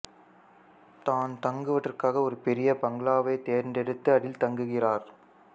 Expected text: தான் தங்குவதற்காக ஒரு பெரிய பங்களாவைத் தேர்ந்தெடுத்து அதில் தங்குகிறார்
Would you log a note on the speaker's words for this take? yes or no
no